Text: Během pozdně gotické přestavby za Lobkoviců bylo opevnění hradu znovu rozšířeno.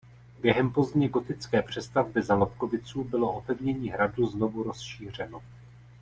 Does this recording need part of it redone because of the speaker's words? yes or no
no